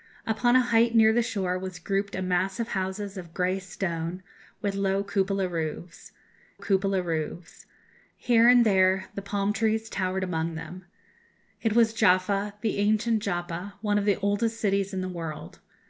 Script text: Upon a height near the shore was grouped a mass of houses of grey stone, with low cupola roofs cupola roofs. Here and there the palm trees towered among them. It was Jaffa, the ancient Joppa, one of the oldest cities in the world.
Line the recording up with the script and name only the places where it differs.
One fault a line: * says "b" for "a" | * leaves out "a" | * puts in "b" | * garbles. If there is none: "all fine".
all fine